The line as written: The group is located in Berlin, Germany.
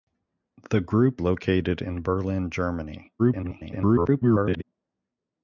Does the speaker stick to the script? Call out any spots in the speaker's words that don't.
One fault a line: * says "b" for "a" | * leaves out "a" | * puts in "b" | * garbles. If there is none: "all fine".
* leaves out "is"
* garbles